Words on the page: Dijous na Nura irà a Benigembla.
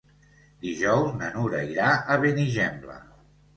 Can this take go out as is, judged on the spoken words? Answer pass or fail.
pass